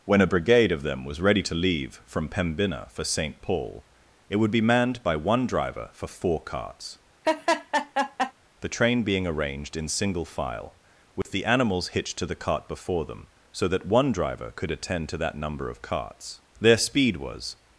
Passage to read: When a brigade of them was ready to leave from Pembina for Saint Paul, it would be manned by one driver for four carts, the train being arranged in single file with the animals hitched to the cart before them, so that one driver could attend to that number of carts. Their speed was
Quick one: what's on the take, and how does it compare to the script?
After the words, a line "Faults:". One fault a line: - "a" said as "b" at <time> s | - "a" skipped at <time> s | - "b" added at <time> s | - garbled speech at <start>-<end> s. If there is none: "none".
When a brigade of them was ready to leave from Pembina for Saint Paul, it would be manned by one driver for four carts, the train being arranged in single file with the animals hitched to the cart before them, so that one driver could attend to that number of carts. Their speed was
Faults:
none